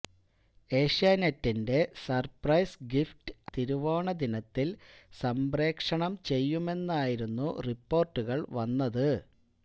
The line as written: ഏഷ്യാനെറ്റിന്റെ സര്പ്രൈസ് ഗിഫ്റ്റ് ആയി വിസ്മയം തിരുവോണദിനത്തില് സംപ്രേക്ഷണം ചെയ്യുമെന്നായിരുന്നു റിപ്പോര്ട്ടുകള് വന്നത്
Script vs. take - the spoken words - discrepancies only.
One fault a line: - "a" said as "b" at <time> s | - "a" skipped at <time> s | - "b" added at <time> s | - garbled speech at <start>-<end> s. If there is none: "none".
- "ആയി വിസ്മയം" skipped at 3.3 s